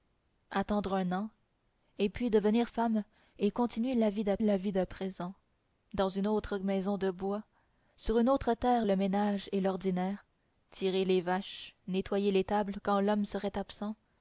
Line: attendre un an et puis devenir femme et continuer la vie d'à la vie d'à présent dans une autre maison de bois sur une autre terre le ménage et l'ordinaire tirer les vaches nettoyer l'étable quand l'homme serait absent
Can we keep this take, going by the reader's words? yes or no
yes